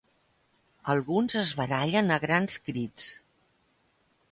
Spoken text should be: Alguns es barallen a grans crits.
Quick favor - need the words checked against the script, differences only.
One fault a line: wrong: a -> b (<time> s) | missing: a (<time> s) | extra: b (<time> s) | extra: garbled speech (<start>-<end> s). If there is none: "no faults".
no faults